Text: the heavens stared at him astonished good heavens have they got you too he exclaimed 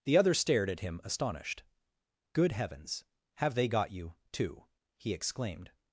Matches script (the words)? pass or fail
fail